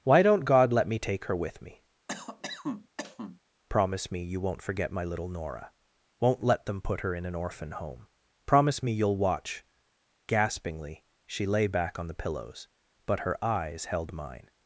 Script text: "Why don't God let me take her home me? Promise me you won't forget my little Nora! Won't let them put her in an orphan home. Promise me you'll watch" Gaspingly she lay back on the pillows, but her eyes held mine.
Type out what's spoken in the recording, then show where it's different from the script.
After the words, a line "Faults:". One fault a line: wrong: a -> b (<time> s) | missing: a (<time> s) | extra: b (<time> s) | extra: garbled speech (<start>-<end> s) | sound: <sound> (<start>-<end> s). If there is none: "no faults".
"Why don't God let me take her with me? Promise me you won't forget my little Nora! Won't let them put her in an orphan home. Promise me you'll watch" Gaspingly she lay back on the pillows, but her eyes held mine.
Faults:
wrong: home -> with (1.4 s)
sound: cough (2.1-3.4 s)